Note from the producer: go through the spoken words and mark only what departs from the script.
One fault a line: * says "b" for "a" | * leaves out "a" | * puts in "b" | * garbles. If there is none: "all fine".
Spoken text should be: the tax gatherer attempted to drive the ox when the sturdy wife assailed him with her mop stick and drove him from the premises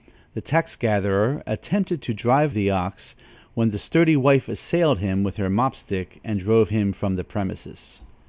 all fine